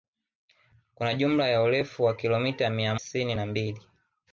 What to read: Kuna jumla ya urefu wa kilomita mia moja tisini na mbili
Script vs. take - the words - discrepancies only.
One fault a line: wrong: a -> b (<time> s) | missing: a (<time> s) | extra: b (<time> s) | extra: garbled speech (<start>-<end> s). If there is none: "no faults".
missing: moja (3.0 s)